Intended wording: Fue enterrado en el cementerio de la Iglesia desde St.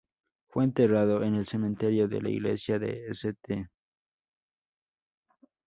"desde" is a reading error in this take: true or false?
true